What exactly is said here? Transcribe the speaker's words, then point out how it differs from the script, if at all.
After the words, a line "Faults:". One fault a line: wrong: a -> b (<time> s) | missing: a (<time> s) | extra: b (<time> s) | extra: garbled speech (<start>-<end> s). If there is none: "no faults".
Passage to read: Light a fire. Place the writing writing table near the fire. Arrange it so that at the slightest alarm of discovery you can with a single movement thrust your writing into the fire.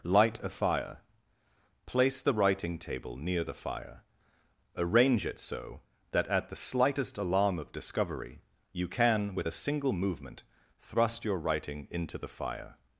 Light a fire. Place the writing table near the fire. Arrange it so that at the slightest alarm of discovery you can with a single movement thrust your writing into the fire.
Faults:
missing: writing (2.8 s)